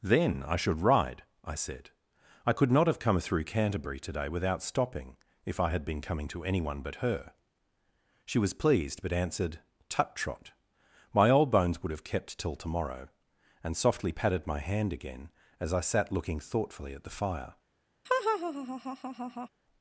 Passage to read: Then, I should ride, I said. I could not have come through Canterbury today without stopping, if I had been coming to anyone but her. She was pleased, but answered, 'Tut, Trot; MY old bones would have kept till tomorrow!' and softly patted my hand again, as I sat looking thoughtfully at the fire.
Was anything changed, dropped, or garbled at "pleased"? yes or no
no